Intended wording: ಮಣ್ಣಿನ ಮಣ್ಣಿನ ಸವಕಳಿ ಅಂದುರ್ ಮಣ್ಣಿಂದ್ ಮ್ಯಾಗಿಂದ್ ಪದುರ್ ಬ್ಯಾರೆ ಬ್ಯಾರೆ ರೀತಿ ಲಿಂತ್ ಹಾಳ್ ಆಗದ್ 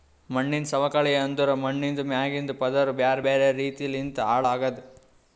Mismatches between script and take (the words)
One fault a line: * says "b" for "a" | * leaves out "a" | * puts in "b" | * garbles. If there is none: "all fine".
* leaves out "ಮಣ್ಣಿನ"